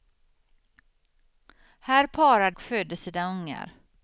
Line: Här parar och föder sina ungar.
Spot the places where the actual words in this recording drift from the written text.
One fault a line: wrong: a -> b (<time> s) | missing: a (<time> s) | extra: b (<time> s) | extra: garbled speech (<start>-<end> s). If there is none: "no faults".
no faults